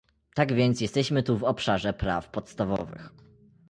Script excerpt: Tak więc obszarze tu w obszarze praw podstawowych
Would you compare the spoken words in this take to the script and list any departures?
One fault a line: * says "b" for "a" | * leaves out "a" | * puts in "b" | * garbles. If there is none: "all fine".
* says "jesteśmy" for "obszarze"